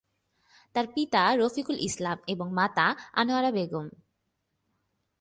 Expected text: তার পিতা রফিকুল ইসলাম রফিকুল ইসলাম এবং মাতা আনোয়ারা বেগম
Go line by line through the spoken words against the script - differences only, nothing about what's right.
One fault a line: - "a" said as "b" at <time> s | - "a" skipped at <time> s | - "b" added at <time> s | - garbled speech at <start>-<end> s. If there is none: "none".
- "রফিকুল ইসলাম" skipped at 2.2 s